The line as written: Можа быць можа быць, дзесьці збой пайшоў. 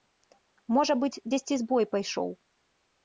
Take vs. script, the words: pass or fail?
fail